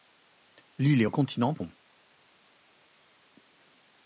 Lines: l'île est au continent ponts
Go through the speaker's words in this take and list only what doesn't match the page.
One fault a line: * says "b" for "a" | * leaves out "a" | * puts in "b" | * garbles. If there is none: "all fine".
all fine